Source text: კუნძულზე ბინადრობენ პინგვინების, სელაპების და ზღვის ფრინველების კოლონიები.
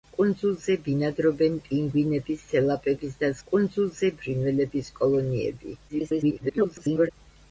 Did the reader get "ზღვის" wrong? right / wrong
wrong